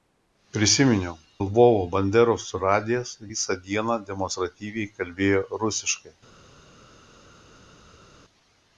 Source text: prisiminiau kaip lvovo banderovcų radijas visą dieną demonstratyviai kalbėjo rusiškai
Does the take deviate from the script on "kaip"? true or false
true